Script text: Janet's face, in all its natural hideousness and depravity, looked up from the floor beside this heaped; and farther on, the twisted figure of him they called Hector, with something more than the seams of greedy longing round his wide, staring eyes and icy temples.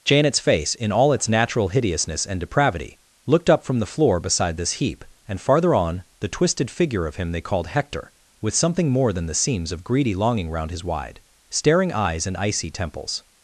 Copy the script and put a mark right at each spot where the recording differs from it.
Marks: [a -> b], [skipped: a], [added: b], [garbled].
Janet's face, in all its natural hideousness and depravity, looked up from the floor beside this [heaped; -> heap] and farther on, the twisted figure of him they called Hector, with something more than the seams of greedy longing round his wide, staring eyes and icy temples.